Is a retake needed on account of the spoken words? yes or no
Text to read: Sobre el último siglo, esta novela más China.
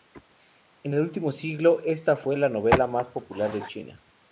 yes